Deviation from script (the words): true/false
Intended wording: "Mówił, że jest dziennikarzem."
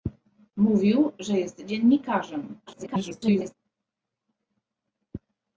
true